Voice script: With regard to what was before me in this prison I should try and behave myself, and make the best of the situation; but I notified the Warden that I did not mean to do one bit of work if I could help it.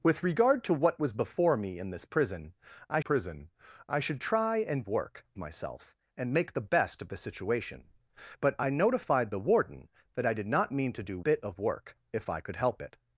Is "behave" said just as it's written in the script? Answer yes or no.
no